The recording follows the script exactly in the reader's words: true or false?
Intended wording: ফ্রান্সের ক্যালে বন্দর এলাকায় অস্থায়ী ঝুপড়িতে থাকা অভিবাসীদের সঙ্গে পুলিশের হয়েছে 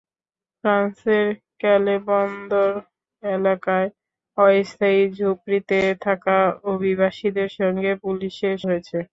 true